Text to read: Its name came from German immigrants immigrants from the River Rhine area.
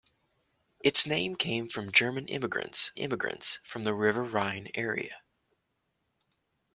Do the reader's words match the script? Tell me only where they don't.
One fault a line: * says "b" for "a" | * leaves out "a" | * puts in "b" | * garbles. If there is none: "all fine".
all fine